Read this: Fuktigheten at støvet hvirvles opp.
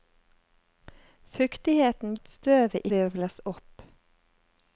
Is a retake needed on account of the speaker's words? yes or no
no